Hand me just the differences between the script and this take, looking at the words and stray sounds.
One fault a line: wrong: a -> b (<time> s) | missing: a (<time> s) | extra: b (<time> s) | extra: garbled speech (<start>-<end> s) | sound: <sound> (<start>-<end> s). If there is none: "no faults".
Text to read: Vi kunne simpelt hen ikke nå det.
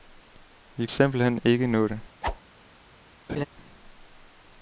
missing: kunne (0.9 s)
sound: whoosh (2.2-2.4 s)
sound: laugh (3.3-3.5 s)